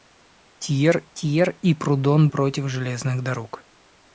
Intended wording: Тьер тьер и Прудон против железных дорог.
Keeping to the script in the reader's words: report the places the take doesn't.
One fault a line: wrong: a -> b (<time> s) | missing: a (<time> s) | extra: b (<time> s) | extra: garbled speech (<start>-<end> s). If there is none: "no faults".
no faults